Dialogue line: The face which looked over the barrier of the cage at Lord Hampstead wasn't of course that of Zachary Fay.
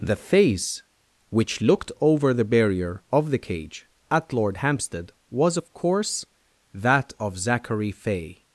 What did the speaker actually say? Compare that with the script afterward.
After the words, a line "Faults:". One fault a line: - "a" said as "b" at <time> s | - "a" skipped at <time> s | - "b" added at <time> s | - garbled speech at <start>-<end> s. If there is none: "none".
The face which looked over the barrier of the cage at Lord Hampstead was of course that of Zachary Fay.
Faults:
- "wasn't" said as "was" at 5.3 s